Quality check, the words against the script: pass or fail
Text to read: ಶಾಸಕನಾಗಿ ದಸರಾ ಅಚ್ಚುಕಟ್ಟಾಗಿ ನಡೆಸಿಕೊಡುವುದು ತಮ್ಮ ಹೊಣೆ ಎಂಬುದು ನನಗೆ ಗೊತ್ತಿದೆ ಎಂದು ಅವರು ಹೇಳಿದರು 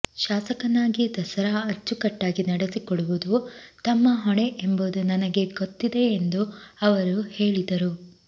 pass